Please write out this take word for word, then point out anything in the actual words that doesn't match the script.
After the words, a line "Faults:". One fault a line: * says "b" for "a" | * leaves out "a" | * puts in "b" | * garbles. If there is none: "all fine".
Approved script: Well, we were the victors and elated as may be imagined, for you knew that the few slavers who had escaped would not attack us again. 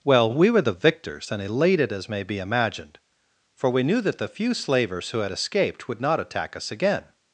Well, we were the victors and elated as may be imagined, for we knew that the few slavers who had escaped would not attack us again.
Faults:
* says "we" for "you"